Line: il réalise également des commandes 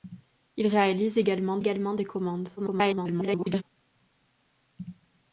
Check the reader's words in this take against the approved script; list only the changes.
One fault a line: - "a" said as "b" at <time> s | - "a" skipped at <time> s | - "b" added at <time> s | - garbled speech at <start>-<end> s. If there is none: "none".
- "également" added at 1.6 s
- garbled speech at 2.6-3.6 s